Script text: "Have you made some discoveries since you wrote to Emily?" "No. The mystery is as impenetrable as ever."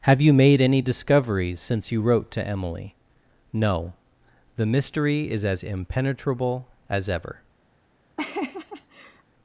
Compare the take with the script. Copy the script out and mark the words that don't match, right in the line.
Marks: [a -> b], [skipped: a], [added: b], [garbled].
"Have you made [some -> any] discoveries since you wrote to Emily?" "No. The mystery is as impenetrable as ever."